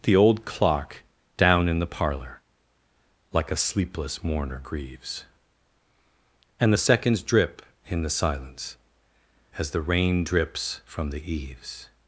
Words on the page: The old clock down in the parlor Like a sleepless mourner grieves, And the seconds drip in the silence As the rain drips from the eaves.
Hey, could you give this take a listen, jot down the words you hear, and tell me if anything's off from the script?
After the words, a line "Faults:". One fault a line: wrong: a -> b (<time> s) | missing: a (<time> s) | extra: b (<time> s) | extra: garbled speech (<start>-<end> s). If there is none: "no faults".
The old clock down in the parlor Like a sleepless mourner grieves, And the seconds drip in the silence As the rain drips from the eaves.
Faults:
no faults